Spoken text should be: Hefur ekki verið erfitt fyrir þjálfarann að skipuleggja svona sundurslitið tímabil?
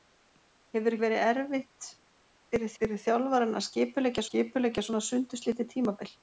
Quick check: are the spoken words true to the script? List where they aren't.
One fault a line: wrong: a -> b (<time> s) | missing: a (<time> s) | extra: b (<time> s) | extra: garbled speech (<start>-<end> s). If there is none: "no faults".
missing: ekki (0.9 s)
extra: fyrir (2.8 s)
extra: skipuleggja (4.2 s)